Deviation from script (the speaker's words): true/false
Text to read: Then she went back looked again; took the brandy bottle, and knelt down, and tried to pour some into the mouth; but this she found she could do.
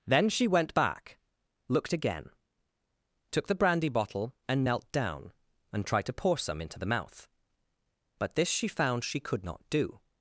true